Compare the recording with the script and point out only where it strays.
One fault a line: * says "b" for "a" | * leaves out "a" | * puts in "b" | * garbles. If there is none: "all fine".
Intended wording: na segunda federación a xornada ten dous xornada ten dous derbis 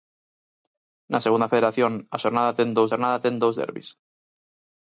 all fine